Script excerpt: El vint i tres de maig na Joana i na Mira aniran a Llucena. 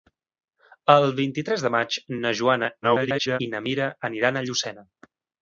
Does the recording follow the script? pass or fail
fail